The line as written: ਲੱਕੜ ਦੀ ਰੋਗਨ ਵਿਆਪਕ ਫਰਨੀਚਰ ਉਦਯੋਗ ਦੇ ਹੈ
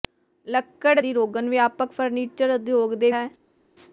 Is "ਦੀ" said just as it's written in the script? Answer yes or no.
yes